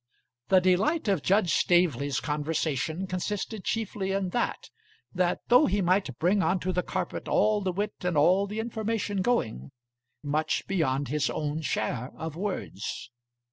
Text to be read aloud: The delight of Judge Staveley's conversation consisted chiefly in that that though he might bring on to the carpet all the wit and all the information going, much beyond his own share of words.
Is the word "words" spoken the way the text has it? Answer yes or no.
yes